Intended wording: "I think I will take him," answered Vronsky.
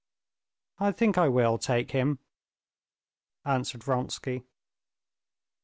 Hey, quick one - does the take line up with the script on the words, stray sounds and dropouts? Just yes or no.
yes